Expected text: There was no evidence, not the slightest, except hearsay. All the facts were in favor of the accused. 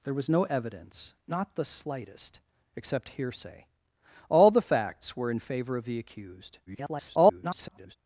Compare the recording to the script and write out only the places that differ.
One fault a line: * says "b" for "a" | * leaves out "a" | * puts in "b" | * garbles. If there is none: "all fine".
* garbles